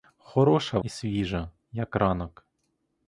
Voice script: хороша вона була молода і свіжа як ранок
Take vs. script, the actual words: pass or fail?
fail